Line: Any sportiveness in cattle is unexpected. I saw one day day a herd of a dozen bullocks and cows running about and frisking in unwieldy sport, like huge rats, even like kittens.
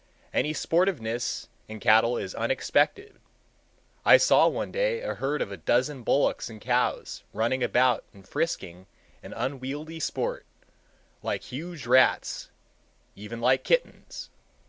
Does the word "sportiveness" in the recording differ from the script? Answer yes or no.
no